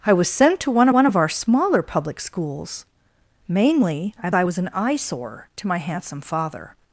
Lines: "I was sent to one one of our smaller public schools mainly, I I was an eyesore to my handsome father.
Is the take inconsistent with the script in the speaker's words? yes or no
no